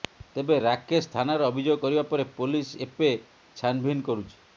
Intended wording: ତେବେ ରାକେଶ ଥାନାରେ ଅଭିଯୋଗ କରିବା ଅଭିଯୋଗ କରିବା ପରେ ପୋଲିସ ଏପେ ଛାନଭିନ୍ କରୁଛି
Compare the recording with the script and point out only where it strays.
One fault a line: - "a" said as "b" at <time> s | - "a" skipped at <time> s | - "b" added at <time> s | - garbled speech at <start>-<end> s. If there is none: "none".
- "ଅଭିଯୋଗ କରିବା" skipped at 2.0 s